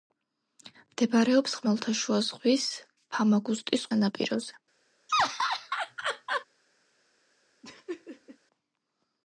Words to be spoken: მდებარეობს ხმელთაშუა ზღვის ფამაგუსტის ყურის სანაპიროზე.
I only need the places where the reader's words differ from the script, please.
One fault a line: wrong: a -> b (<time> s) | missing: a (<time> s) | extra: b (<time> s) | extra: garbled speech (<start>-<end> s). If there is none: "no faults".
missing: ყურის (3.9 s)